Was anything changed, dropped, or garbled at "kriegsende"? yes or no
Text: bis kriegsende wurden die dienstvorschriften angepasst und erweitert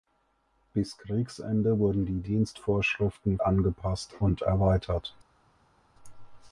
no